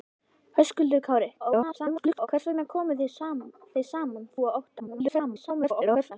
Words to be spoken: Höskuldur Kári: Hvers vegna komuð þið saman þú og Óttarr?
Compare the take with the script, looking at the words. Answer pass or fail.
fail